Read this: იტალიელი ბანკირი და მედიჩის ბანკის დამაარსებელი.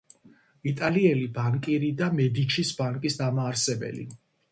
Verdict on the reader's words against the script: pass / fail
pass